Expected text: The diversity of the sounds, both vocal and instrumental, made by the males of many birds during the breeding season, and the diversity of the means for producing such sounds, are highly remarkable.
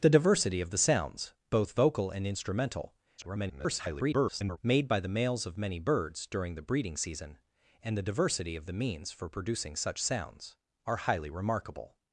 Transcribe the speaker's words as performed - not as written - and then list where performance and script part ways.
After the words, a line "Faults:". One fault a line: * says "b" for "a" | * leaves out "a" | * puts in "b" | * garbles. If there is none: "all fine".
The diversity of the sounds, both vocal and instrumental, [garbled] made by the males of many birds during the breeding season, and the diversity of the means for producing such sounds, are highly remarkable.
Faults:
* garbles